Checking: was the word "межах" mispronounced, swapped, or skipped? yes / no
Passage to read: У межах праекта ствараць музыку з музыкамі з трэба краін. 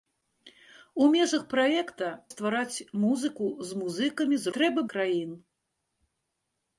no